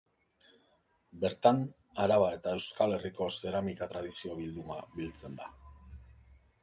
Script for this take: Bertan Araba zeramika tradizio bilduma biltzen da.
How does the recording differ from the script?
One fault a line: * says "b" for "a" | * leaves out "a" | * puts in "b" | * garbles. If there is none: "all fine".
* puts in "eta Euskal Herriko"